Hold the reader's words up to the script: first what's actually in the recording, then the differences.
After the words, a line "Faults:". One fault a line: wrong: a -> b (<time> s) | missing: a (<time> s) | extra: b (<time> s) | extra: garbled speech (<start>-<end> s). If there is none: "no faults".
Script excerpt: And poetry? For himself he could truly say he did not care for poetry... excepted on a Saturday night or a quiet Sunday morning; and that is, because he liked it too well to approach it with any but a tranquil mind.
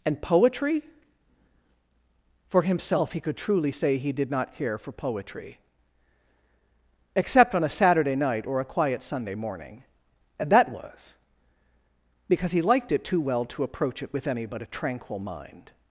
And poetry? For himself he could truly say he did not care for poetry... except on a Saturday night or a quiet Sunday morning; and that was, because he liked it too well to approach it with any but a tranquil mind.
Faults:
wrong: excepted -> except (7.2 s)
wrong: is -> was (10.7 s)